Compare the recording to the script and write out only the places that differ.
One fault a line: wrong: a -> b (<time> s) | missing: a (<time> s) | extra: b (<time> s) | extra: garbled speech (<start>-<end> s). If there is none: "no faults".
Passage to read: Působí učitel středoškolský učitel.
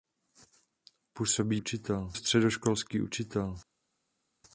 no faults